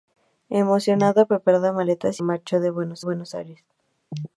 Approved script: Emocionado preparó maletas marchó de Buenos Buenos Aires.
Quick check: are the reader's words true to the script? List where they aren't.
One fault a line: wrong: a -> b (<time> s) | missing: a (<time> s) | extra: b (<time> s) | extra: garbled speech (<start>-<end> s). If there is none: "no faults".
no faults